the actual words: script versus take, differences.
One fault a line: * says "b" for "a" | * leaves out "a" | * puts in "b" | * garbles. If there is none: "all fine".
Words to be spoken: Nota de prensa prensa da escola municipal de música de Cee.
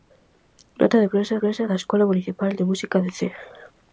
all fine